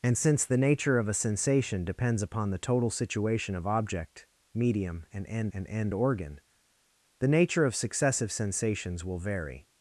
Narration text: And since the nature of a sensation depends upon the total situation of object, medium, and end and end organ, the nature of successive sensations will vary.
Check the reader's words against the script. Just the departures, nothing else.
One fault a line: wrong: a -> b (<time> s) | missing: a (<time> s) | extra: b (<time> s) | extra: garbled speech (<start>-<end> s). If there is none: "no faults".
no faults